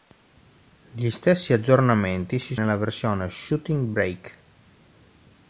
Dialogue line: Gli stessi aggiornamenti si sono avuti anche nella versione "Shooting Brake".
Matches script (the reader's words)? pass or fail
fail